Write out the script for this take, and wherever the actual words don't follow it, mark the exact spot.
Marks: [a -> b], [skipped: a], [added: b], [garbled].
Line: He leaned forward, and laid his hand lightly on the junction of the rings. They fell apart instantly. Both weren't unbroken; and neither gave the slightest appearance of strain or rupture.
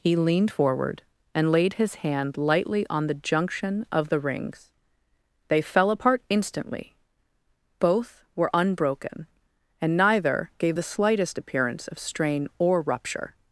He leaned forward, and laid his hand lightly on the junction of the rings. They fell apart instantly. Both [weren't -> were] unbroken; and neither gave the slightest appearance of strain or rupture.